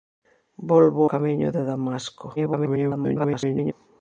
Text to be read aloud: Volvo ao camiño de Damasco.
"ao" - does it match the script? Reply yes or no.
no